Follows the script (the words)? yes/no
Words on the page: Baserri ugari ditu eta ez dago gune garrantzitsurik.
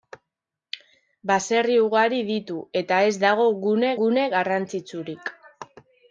no